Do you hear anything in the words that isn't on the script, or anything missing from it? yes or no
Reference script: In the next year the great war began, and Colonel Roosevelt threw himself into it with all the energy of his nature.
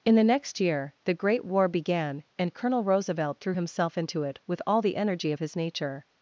no